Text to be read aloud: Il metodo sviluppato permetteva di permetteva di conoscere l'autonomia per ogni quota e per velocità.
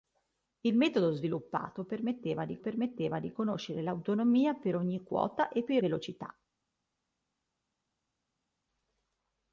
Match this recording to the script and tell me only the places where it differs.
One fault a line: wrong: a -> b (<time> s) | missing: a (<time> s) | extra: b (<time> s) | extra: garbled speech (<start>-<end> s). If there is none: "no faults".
no faults